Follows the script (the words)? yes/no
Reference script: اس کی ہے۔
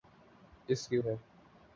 yes